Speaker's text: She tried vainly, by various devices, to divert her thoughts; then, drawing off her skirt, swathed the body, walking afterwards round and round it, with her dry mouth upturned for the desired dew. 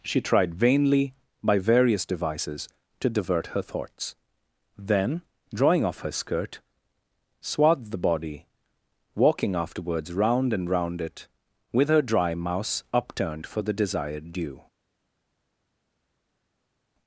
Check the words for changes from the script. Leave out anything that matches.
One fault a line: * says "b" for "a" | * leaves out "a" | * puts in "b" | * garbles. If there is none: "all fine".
* says "mouse" for "mouth"